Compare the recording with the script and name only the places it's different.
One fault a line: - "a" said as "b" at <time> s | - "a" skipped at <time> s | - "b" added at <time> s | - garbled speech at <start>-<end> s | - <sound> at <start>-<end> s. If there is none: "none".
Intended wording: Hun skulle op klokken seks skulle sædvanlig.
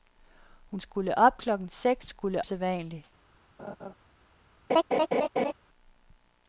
- laugh at 3.6-3.9 s
- laugh at 4.7-5.5 s